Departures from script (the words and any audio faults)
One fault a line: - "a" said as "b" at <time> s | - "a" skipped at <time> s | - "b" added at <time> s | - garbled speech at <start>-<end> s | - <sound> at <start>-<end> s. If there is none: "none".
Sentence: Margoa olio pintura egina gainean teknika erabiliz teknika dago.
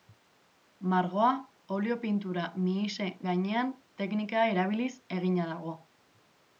- "egina" said as "mihise" at 2.6 s
- "teknika" said as "egina" at 5.2 s